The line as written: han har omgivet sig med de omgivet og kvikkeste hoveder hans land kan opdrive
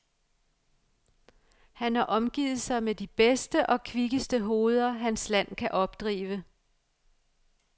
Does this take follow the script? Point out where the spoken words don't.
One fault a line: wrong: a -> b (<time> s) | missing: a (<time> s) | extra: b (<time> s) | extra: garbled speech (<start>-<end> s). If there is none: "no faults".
wrong: omgivet -> bedste (3.1 s)